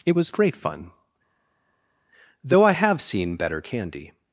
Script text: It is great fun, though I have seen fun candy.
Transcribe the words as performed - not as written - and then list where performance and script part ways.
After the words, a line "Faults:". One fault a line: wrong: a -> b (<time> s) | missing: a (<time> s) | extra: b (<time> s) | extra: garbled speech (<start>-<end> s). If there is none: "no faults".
It was great fun, though I have seen better candy.
Faults:
wrong: is -> was (0.1 s)
wrong: fun -> better (3.4 s)